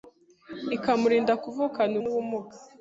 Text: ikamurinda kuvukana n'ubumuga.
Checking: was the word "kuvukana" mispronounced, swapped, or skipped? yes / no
no